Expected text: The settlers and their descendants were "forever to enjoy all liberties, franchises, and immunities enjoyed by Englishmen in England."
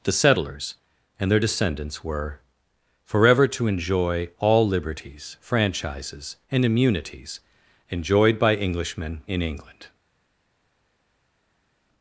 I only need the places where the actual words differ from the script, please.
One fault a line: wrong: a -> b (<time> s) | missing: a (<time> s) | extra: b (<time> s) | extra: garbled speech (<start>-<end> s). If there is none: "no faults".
no faults